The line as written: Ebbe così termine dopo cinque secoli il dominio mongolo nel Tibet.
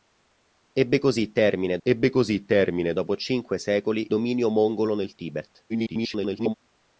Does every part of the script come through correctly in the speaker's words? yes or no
no